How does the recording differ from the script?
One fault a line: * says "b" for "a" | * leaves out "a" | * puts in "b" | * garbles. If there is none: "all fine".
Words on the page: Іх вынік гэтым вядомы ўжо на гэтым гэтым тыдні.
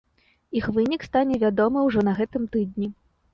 * says "стане" for "гэтым"
* leaves out "гэтым"